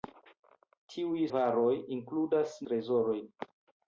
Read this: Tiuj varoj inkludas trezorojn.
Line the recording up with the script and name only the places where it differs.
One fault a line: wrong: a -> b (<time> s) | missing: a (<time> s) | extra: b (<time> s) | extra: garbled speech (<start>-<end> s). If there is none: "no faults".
no faults